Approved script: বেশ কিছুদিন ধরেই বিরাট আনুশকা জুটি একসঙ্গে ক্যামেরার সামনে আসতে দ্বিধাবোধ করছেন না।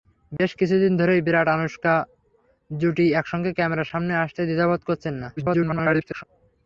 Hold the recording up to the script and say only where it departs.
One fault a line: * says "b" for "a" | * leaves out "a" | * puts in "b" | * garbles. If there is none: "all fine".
* garbles